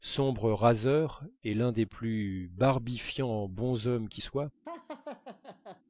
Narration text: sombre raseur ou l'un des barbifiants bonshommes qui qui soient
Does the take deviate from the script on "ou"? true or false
true